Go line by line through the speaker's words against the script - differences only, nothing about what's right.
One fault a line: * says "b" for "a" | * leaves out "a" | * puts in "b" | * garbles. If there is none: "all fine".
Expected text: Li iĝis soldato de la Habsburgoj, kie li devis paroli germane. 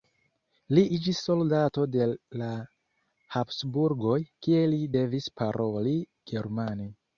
all fine